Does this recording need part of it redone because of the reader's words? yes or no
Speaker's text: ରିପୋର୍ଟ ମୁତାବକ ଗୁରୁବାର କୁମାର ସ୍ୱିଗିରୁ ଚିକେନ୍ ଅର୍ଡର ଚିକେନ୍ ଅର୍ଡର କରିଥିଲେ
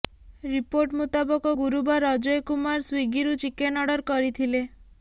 yes